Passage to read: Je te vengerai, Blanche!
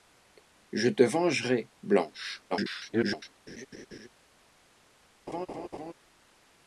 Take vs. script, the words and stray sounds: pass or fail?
fail